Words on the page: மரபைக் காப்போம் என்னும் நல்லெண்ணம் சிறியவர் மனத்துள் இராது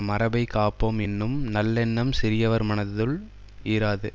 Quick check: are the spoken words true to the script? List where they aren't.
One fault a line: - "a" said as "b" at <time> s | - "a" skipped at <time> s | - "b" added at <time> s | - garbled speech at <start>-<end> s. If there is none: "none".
none